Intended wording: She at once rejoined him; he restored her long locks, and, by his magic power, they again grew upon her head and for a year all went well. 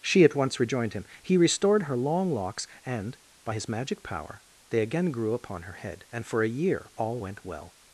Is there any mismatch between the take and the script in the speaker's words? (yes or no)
no